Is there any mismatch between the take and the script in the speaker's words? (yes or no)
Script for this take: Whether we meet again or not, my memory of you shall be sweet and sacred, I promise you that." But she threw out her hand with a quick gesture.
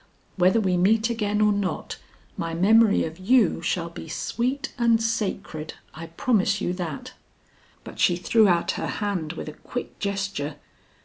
no